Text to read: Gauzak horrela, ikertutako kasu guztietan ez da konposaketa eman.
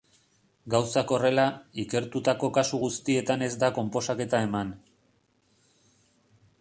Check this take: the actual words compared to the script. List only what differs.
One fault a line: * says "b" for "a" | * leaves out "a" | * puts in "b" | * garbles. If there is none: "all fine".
all fine